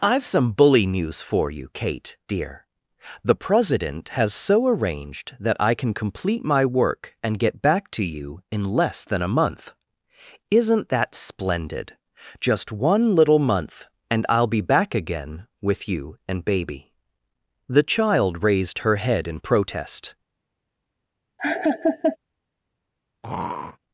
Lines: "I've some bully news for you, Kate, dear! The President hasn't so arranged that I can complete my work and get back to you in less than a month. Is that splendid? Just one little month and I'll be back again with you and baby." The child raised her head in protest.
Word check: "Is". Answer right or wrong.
wrong